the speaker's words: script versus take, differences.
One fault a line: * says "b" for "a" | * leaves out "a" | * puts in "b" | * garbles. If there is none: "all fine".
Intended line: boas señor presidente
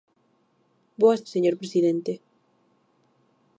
all fine